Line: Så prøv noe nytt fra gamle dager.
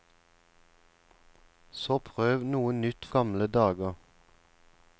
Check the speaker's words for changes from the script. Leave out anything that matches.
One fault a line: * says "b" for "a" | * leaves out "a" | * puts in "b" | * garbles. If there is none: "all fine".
* leaves out "fra"